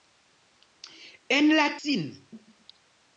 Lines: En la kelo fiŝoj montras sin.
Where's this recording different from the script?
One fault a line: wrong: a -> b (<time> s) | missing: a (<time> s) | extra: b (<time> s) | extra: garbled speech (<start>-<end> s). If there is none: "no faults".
missing: kelo fiŝoj montras (1.7 s)